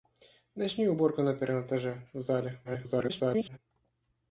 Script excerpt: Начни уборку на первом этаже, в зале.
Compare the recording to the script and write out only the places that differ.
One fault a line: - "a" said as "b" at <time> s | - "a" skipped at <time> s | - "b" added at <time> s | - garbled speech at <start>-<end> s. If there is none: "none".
- garbled speech at 2.6-3.6 s